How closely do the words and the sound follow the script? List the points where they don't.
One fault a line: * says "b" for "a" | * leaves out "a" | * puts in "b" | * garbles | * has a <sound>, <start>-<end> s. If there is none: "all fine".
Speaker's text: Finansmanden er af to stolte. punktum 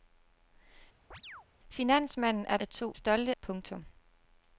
* has a chirp, 1.1-1.5 s